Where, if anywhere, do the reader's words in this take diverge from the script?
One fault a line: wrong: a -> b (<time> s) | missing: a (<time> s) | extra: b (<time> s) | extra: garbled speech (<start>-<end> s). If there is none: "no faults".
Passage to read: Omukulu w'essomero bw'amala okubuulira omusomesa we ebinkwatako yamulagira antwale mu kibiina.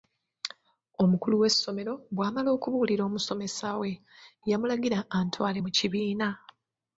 missing: ebinkwatako (3.9 s)